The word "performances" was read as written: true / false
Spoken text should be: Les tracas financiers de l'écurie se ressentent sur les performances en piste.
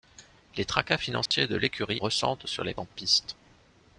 false